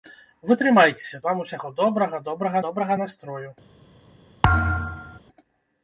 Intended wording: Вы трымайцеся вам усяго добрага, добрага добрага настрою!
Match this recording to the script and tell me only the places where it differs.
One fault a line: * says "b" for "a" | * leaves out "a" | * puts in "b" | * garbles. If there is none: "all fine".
all fine